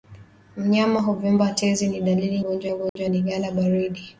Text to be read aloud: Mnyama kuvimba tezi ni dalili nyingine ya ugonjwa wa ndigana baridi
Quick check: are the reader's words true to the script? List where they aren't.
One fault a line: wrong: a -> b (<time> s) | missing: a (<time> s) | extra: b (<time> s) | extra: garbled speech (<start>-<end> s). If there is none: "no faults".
wrong: nyingine -> ugonjwa (2.4 s)